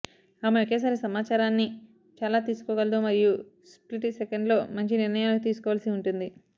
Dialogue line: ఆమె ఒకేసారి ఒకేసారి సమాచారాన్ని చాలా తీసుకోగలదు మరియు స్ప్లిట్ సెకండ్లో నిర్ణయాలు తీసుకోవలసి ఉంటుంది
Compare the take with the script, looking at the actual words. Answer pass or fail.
fail